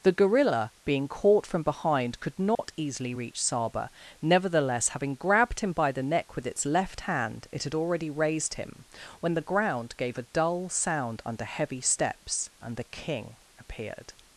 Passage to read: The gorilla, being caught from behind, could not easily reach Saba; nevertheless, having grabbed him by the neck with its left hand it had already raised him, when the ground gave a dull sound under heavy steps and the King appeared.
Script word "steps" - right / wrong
right